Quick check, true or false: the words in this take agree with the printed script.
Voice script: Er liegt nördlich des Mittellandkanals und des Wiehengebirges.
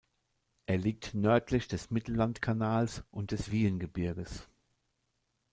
true